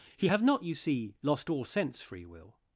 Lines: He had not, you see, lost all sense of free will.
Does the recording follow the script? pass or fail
fail